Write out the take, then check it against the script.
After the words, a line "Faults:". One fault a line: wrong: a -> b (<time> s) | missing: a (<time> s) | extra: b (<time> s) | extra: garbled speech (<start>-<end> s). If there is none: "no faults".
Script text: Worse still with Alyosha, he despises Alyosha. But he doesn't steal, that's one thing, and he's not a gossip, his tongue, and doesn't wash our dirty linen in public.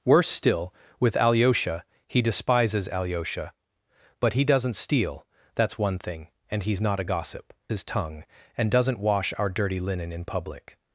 Worse still with Alyosha, he despises Alyosha. But he doesn't steal, that's one thing, and he's not a gossip, his tongue, and doesn't wash our dirty linen in public.
Faults:
no faults